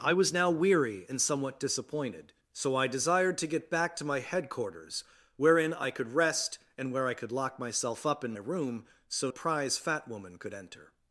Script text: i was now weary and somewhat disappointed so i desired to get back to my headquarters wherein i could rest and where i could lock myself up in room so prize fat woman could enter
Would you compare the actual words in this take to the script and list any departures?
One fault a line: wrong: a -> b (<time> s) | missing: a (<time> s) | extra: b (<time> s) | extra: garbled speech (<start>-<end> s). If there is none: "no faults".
no faults